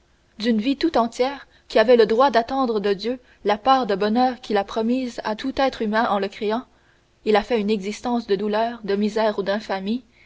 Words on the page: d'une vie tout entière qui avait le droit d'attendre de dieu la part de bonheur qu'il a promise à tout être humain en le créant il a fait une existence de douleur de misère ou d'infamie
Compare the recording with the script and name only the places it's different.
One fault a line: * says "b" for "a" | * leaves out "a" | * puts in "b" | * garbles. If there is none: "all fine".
all fine